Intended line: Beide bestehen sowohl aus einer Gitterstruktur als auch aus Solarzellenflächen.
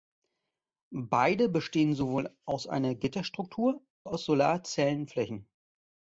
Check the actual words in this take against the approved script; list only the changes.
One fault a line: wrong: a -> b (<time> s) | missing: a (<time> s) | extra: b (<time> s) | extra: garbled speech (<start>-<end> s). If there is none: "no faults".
missing: als auch (3.9 s)